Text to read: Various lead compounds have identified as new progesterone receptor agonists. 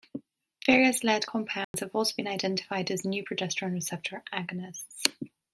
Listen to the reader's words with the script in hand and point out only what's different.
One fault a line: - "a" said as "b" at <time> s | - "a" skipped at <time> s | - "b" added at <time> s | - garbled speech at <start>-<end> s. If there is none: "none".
- "also been" added at 1.9 s